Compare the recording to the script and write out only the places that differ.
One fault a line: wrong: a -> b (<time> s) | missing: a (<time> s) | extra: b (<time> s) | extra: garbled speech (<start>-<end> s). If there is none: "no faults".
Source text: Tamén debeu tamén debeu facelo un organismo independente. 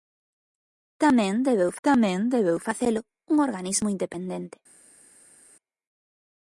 no faults